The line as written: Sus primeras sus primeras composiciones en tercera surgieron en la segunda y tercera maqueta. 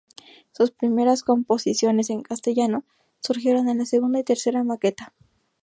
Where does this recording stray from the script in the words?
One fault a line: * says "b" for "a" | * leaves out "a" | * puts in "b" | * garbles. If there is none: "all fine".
* leaves out "sus primeras"
* says "castellano" for "tercera"